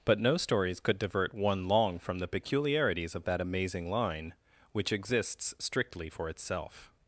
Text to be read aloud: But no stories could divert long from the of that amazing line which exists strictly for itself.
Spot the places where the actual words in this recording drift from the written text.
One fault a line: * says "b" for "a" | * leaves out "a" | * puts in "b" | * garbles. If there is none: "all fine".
* puts in "one"
* puts in "peculiarities"